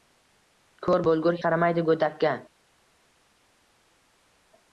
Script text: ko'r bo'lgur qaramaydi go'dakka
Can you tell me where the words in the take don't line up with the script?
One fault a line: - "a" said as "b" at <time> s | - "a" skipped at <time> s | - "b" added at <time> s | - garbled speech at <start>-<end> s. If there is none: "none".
none